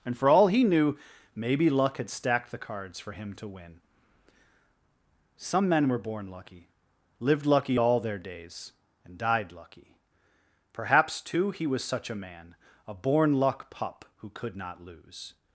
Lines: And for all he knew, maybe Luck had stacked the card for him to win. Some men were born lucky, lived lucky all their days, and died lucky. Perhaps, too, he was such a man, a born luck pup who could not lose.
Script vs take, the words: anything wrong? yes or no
yes